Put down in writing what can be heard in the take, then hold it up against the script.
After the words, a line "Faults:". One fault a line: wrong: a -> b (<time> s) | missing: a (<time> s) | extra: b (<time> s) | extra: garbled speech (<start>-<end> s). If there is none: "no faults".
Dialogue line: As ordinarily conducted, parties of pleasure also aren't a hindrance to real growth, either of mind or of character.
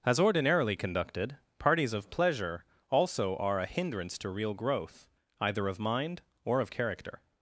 As ordinarily conducted, parties of pleasure also are a hindrance to real growth, either of mind or of character.
Faults:
wrong: aren't -> are (3.4 s)